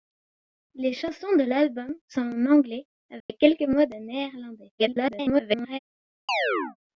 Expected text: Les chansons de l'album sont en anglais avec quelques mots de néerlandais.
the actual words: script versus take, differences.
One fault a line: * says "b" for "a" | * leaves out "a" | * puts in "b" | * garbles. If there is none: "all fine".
* garbles